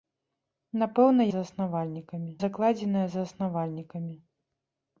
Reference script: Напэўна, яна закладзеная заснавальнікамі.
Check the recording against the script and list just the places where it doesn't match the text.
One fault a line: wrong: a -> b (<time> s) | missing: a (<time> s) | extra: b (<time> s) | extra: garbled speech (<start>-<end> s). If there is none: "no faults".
wrong: яна -> заснавальнікамі (1.3 s)